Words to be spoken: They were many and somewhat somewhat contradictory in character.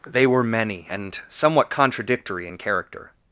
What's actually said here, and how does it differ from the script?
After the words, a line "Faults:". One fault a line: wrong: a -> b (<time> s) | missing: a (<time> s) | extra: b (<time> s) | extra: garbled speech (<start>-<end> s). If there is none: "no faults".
They were many and somewhat contradictory in character.
Faults:
missing: somewhat (1.7 s)